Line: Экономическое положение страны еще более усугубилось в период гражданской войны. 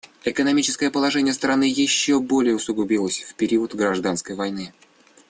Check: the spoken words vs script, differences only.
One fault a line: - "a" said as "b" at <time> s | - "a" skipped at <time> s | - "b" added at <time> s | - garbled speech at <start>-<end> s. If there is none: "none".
none